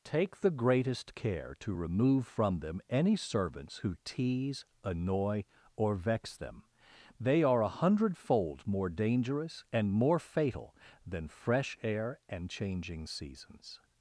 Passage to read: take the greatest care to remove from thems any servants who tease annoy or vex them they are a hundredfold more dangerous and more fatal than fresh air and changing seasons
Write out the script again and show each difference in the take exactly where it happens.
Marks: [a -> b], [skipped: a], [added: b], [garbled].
take the greatest care to remove from [thems -> them] any servants who tease annoy or vex them they are a hundredfold more dangerous and more fatal than fresh air and changing seasons